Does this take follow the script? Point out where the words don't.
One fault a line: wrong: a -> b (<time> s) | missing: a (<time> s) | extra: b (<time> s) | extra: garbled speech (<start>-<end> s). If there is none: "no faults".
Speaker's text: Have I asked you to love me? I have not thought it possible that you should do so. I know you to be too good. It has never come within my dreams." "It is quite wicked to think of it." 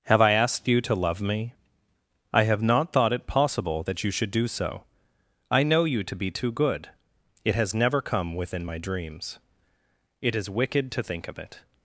missing: quite (10.5 s)